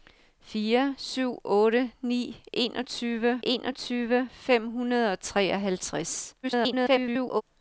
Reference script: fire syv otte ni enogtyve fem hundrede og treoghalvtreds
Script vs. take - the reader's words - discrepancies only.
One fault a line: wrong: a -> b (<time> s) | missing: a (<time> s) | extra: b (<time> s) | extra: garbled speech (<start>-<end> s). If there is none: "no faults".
extra: enogtyve (3.4 s)
extra: garbled speech (6.4-7.4 s)